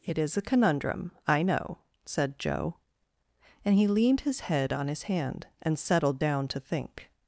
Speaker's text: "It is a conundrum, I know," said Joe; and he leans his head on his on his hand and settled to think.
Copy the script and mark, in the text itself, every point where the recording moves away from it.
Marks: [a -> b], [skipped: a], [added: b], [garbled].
"It is a conundrum, I know," said Joe; and he [leans -> leaned] his head on his [skipped: on his] hand and settled [added: down] to think.